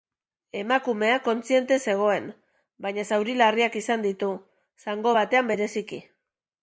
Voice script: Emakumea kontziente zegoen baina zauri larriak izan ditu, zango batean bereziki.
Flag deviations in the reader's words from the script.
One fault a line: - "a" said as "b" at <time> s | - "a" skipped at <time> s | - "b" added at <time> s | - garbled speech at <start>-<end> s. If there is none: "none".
none